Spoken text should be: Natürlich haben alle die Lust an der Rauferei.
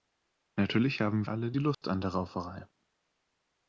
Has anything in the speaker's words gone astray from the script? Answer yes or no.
no